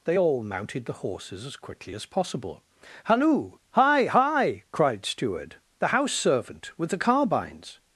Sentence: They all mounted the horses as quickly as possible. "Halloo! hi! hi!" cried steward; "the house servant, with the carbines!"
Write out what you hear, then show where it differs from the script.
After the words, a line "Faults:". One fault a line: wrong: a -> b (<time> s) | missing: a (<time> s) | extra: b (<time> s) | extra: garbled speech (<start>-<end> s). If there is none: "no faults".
They all mounted the horses as quickly as possible. "Halloo! hi! hi!" cried steward; "the house servant, with the carbines!"
Faults:
no faults